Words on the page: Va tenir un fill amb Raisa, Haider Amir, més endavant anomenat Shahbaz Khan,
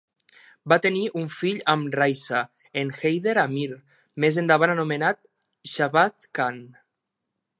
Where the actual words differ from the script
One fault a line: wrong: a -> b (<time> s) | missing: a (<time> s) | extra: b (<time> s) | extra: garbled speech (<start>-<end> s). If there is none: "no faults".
extra: en (2.8 s)